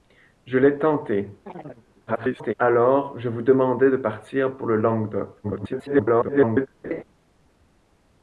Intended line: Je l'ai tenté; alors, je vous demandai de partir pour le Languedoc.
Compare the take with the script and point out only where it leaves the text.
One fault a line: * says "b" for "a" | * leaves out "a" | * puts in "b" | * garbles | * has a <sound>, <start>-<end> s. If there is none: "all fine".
* has a chirp, 1.5-1.8 s
* garbles
* garbles
* has a laugh, 6.8-7.0 s